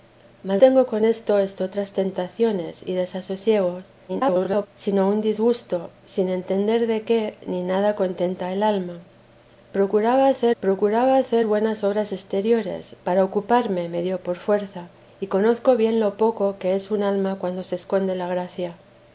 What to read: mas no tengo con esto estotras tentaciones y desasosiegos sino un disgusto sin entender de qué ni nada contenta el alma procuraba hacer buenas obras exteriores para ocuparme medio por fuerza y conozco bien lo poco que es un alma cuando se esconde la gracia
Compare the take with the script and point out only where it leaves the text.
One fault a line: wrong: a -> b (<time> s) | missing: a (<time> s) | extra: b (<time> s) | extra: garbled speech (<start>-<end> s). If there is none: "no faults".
missing: no (0.6 s)
extra: garbled speech (4.1-4.7 s)
extra: procuraba hacer (10.6 s)